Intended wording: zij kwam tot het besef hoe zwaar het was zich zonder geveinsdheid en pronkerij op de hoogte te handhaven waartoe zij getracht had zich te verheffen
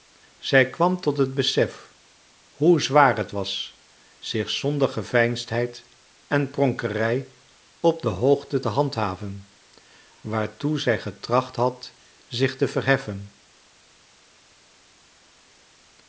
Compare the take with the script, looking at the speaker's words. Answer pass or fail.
pass